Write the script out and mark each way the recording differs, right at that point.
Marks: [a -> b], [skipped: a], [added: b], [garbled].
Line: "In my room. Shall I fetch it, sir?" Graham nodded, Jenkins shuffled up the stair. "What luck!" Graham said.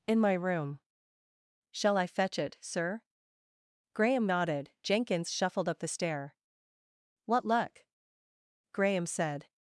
"In my room. Shall I fetch it, sir?" Graham nodded, Jenkins shuffled up the stair. "What luck!" Graham said.